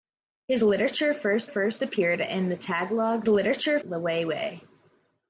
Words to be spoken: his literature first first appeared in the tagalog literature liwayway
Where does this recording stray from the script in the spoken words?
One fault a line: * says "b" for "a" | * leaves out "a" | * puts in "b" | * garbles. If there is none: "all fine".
all fine